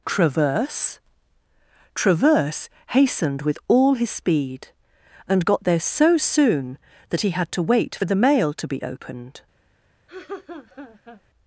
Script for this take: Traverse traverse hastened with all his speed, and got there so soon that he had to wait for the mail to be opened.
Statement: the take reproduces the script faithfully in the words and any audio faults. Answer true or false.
false